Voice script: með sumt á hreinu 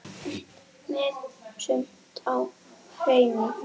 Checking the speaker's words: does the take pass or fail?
pass